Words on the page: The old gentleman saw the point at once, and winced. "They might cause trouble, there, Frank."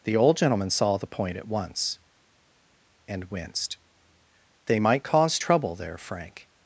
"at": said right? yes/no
yes